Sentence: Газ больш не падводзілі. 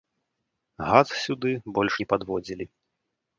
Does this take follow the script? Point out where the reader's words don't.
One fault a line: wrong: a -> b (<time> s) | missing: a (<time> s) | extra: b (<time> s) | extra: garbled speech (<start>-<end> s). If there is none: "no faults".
extra: сюды (1.2 s)